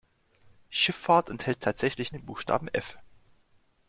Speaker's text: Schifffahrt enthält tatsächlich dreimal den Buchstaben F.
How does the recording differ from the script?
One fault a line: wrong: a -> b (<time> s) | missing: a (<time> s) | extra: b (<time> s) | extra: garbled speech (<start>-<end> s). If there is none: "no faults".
missing: dreimal (2.1 s)